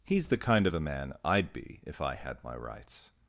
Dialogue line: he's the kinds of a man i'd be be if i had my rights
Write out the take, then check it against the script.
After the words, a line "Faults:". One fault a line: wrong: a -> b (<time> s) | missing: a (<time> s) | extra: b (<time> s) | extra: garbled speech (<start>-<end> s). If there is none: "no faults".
he's the kind of a man i'd be if i had my rights
Faults:
wrong: kinds -> kind (0.4 s)
missing: be (1.8 s)